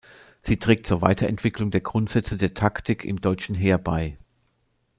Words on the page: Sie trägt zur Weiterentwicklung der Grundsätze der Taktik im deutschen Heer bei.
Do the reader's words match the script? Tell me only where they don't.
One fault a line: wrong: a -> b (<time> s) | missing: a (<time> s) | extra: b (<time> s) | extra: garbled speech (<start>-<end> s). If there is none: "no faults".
no faults